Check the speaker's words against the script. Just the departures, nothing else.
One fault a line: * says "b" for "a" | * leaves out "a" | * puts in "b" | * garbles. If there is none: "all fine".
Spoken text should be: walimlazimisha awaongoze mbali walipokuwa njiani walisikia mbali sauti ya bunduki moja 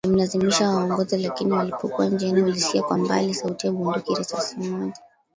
* says "lakini" for "mbali"
* puts in "kwa"
* puts in "risasi"